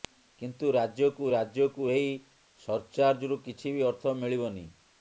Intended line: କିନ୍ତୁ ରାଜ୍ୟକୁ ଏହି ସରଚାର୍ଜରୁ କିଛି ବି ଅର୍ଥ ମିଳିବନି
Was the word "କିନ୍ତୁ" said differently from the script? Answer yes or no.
no